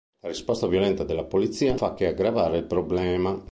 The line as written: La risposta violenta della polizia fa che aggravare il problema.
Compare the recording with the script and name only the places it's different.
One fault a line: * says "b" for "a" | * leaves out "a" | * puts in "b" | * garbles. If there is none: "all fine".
all fine